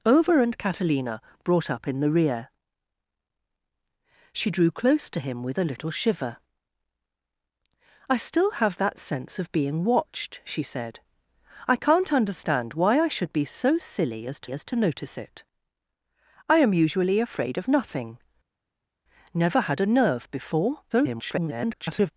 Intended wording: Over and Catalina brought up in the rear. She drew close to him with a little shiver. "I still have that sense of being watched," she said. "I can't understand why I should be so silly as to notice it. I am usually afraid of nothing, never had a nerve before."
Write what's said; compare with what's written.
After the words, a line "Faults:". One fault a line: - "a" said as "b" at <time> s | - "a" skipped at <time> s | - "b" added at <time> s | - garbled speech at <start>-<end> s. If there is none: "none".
Over and Catalina brought up in the rear. She drew close to him with a little shiver. "I still have that sense of being watched," she said. "I can't understand why I should be so silly as to as to notice it. I am usually afraid of nothing, never had a nerve before." [garbled]
Faults:
- "as to" added at 14.5 s
- garbled speech at 20.9-22.1 s